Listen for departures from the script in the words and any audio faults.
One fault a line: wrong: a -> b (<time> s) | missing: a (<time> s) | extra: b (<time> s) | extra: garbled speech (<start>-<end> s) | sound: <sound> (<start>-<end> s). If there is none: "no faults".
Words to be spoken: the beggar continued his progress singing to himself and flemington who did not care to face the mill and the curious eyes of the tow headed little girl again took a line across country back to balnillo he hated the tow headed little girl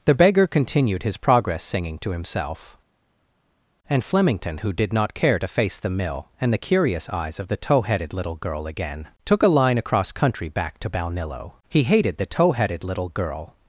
no faults